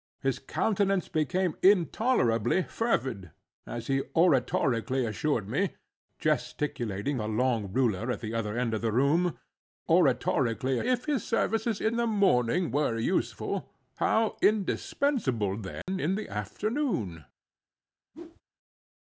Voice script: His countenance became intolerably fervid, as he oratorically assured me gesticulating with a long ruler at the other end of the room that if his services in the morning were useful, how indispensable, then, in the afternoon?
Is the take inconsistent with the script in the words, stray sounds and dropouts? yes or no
yes